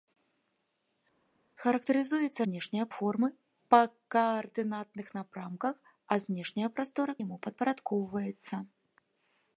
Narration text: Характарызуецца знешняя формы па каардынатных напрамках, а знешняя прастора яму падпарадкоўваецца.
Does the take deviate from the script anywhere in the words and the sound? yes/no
no